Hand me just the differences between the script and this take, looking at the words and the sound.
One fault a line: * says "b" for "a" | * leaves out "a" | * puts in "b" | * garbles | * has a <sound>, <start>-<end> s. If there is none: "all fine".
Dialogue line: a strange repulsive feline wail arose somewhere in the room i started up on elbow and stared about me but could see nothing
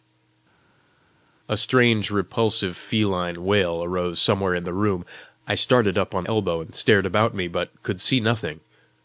all fine